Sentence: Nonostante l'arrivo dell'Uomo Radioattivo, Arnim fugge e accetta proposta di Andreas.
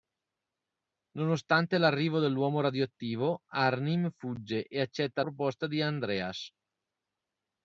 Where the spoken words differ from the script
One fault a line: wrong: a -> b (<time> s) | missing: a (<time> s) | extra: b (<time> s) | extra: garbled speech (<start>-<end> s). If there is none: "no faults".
no faults